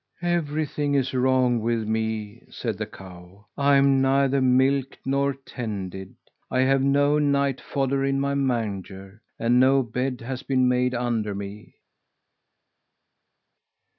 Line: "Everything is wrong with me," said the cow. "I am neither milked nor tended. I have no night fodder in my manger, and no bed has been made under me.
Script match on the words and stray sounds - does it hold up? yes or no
yes